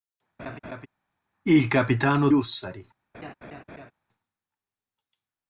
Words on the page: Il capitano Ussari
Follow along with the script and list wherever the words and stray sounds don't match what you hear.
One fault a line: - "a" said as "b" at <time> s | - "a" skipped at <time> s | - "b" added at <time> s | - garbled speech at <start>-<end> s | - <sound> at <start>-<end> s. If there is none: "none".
- laugh at 0.4-0.9 s
- laugh at 3.1-3.9 s